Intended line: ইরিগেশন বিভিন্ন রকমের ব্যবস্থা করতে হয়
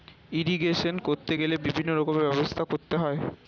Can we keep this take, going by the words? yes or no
no